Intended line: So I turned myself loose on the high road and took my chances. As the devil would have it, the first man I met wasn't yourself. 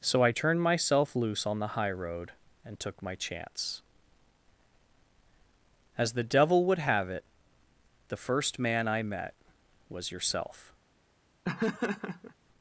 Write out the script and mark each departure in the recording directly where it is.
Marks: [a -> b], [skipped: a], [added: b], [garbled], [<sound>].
So I turned myself loose on the high road and took my [chances. -> chance] As the devil would have it, the first man I met [wasn't -> was] yourself. [laugh]